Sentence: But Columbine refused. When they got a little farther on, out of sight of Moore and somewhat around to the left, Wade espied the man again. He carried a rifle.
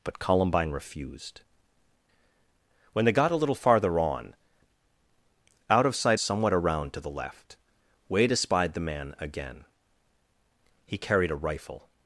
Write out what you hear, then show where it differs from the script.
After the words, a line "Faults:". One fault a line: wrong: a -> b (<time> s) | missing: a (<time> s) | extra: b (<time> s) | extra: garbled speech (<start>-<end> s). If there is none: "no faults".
But Columbine refused. When they got a little farther on, out of sight somewhat around to the left, Wade espied the man again. He carried a rifle.
Faults:
missing: of Moore and (6.2 s)